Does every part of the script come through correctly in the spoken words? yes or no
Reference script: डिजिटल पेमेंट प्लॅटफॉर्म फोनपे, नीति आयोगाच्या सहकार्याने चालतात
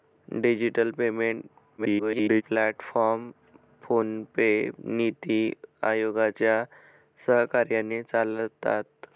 no